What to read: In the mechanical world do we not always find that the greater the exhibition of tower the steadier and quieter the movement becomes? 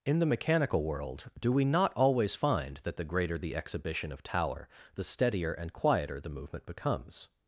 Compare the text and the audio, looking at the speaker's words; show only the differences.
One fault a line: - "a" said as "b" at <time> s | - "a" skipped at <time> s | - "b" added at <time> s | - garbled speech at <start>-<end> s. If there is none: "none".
none